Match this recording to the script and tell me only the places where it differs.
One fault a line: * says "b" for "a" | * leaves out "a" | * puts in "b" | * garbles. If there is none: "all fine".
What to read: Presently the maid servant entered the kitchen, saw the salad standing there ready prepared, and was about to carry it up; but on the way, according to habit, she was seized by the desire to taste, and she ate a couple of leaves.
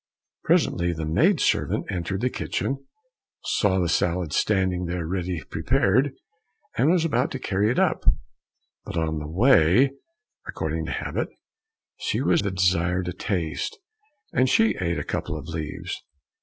* leaves out "seized by"